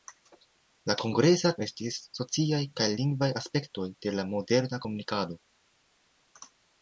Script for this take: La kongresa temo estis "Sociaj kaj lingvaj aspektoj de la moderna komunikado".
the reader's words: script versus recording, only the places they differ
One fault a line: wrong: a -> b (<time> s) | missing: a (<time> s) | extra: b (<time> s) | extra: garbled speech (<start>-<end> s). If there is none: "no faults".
missing: temo (1.5 s)